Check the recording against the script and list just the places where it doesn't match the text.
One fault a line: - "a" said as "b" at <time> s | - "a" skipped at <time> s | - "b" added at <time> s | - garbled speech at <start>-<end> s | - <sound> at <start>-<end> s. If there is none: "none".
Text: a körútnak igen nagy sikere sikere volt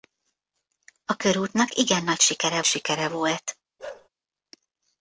- bark at 3.8-4.1 s